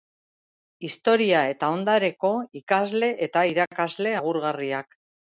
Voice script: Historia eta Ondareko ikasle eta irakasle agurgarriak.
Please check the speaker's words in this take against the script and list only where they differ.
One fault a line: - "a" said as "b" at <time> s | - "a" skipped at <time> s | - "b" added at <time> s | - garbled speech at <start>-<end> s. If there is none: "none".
none